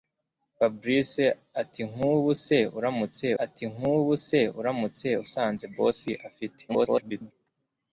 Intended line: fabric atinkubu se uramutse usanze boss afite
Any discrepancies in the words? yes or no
yes